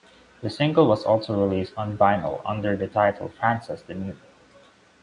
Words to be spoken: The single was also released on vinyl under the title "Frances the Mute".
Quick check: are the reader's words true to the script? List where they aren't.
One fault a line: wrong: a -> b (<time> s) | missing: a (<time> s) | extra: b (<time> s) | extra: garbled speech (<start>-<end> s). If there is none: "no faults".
no faults